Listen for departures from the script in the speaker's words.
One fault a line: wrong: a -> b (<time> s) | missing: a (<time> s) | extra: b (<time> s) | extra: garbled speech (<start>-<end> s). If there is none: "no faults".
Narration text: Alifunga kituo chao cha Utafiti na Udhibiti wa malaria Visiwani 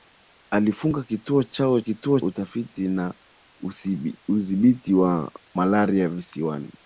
wrong: cha -> kituo (1.8 s)